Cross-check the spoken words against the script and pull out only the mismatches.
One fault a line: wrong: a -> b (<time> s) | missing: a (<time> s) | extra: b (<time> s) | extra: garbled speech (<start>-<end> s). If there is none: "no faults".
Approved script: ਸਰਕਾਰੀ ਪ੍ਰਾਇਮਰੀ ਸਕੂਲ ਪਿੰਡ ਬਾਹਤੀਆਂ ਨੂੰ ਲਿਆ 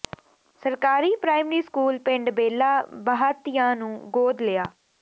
extra: ਬੇਲਾ (2.3 s)
extra: ਗੋਦ (4.1 s)